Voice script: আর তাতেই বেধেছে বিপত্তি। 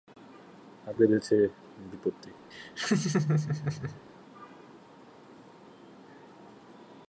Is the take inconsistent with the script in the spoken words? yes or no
yes